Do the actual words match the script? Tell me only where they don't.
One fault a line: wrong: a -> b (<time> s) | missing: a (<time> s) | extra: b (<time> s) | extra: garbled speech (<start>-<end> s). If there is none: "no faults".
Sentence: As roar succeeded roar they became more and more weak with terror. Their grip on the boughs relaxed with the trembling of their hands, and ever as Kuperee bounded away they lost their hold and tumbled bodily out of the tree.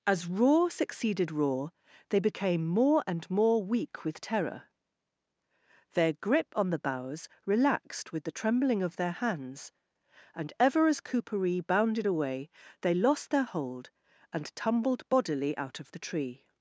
no faults